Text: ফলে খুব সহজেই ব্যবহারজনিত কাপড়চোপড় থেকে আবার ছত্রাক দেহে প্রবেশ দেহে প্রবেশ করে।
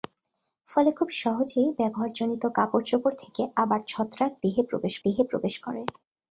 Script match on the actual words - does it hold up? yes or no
yes